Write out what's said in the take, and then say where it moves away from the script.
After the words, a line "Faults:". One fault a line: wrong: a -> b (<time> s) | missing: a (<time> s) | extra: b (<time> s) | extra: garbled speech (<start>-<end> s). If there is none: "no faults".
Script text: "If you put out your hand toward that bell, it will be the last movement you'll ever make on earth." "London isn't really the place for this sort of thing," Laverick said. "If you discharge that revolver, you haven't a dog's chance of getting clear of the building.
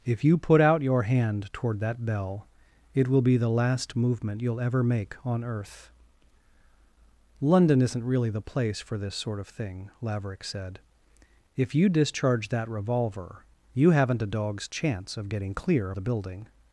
"If you put out your hand toward that bell, it will be the last movement you'll ever make on earth." "London isn't really the place for this sort of thing," Laverick said. "If you discharge that revolver, you haven't a dog's chance of getting clear the building.
Faults:
missing: of (15.9 s)